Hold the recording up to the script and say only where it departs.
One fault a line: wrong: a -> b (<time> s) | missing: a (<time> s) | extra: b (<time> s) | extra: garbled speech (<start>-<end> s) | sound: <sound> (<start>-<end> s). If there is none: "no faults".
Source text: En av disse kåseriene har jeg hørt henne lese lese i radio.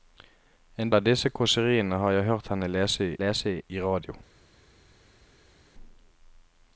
no faults